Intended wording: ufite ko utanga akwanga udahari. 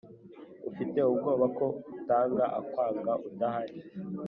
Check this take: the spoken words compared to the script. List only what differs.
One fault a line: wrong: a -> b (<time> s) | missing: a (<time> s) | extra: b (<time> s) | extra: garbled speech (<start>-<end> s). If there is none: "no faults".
extra: ubwoba (1.1 s)